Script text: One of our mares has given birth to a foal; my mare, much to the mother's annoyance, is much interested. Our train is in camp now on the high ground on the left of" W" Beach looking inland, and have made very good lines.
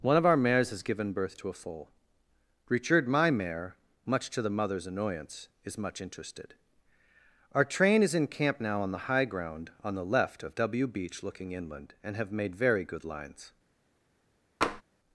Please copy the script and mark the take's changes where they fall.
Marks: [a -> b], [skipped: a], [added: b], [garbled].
One of our mares has given birth to a foal; [added: richard] my mare, much to the mother's annoyance, is much interested. Our train is in camp now on the high ground on the left of" W" Beach looking inland, and have made very good lines.